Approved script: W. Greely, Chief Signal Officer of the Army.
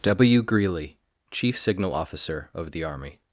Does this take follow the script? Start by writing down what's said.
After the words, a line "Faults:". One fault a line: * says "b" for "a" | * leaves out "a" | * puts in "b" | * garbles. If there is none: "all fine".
W. Greely, Chief Signal Officer of the Army.
Faults:
all fine